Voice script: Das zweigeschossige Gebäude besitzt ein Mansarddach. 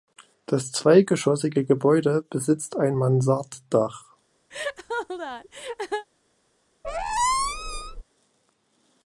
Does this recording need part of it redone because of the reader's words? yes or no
no